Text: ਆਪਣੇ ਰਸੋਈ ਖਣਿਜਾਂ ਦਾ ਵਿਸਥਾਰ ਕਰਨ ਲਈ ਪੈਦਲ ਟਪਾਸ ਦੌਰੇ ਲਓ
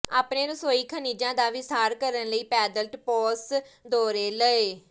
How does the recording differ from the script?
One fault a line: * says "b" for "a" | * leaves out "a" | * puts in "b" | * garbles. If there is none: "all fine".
all fine